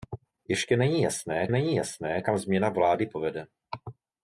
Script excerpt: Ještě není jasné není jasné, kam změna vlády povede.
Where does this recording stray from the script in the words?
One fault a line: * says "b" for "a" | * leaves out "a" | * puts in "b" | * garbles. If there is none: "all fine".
all fine